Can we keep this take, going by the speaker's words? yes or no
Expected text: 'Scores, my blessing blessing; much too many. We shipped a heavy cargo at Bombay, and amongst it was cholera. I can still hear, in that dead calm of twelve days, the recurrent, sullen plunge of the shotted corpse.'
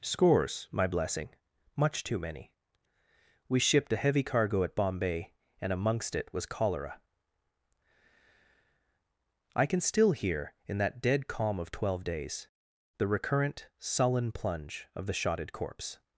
no